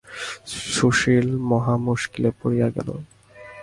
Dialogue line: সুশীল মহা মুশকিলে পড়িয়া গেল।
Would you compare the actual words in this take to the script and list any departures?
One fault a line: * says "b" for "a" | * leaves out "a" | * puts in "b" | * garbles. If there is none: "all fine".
all fine